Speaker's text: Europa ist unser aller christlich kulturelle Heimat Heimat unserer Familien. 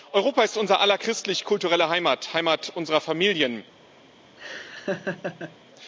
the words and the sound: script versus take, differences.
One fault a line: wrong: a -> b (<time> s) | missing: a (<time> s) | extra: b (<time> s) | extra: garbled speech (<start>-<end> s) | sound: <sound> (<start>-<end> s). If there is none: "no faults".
sound: laugh (4.4-5.6 s)